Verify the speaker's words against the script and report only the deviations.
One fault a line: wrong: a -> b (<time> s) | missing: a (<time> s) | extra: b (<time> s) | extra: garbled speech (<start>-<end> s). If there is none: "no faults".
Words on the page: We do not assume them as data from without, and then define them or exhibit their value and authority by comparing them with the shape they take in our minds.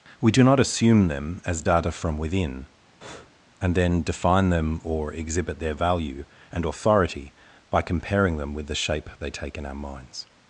wrong: without -> within (2.2 s)